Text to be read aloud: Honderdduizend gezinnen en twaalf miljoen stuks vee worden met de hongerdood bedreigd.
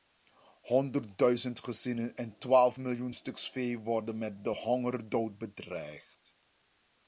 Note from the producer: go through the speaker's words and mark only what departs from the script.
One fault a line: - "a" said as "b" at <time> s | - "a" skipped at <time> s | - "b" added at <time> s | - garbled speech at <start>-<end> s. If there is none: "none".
none